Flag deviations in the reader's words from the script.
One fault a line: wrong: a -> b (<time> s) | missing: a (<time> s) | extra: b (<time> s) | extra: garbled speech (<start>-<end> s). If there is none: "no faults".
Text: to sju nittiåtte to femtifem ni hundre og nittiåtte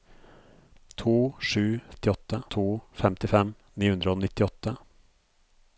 no faults